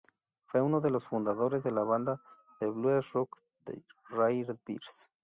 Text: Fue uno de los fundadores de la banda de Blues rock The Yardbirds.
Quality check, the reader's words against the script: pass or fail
pass